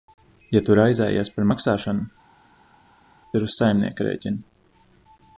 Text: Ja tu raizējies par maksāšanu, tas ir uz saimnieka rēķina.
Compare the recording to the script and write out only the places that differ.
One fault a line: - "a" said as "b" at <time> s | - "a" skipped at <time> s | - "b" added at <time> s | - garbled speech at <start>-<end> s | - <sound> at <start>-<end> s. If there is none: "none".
- "tas" skipped at 2.1 s